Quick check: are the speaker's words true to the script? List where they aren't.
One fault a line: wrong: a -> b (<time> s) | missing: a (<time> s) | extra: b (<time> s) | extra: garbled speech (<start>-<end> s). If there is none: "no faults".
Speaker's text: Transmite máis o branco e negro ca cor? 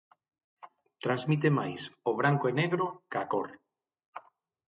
no faults